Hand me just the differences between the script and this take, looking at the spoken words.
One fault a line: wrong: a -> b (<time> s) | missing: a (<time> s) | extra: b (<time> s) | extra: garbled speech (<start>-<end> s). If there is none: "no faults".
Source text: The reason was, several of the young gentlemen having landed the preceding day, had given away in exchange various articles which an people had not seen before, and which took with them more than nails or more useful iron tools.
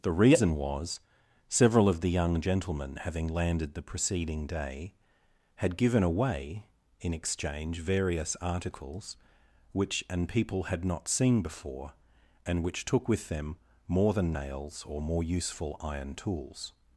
no faults